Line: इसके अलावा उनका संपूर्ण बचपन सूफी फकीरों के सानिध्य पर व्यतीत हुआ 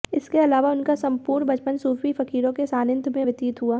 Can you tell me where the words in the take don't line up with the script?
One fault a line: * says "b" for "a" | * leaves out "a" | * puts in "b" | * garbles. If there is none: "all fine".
* says "में" for "पर"